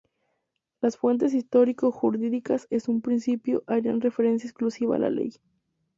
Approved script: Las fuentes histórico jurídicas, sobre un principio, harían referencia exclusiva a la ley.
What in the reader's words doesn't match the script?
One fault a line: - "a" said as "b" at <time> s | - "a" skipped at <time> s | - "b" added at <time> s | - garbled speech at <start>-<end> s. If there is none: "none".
- "sobre" said as "en" at 2.7 s